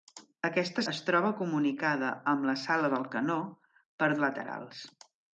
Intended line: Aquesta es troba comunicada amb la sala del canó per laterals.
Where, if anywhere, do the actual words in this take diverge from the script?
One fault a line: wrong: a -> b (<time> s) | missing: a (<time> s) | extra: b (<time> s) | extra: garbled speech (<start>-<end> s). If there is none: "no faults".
no faults